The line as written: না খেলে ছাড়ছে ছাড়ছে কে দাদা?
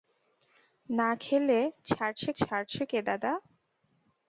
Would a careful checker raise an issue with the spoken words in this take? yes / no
no